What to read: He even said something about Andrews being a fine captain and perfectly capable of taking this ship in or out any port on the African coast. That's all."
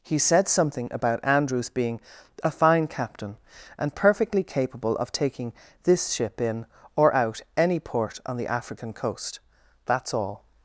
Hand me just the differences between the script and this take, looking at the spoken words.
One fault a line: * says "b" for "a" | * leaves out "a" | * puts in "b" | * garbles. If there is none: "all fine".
* leaves out "even"